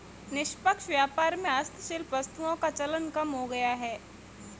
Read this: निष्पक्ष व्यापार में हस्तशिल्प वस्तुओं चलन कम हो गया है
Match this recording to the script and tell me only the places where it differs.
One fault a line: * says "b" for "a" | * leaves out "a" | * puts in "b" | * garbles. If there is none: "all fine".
* puts in "का"